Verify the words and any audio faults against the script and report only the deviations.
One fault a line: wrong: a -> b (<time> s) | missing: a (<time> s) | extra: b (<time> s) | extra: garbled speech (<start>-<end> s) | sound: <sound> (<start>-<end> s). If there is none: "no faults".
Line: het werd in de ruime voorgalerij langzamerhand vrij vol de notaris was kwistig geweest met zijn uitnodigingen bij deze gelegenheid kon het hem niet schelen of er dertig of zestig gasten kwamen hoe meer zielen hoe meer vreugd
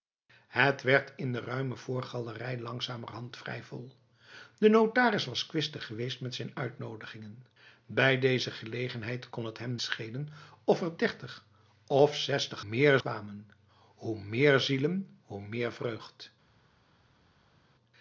missing: niet (9.8 s)
wrong: gasten -> meer (12.6 s)